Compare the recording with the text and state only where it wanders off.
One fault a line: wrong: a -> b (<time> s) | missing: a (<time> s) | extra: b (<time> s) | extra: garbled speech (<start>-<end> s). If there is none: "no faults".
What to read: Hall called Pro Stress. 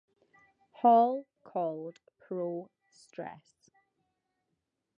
no faults